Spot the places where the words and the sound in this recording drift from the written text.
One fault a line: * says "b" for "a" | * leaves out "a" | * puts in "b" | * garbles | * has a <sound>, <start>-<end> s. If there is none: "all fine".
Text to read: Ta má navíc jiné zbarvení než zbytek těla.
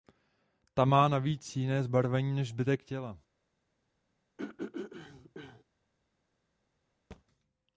* has a throat clearing, 4.4-5.6 s
* has a thud, 7.1-7.2 s